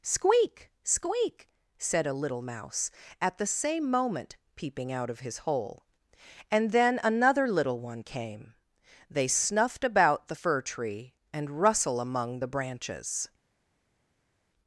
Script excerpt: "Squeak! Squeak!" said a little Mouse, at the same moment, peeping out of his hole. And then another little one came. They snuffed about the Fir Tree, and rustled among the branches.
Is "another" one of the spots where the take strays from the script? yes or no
no